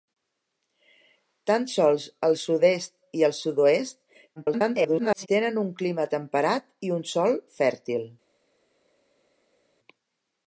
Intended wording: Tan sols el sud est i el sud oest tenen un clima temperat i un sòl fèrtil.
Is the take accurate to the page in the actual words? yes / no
no